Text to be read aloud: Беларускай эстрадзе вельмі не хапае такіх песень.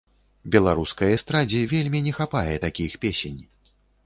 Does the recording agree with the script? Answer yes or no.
yes